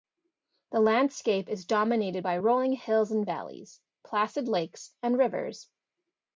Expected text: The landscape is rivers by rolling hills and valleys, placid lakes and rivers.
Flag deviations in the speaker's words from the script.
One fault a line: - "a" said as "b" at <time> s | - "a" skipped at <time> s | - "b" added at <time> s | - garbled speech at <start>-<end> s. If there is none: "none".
- "rivers" said as "dominated" at 1.6 s